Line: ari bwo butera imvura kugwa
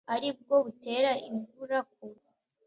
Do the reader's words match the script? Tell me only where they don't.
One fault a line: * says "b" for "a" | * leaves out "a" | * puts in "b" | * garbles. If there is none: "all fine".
all fine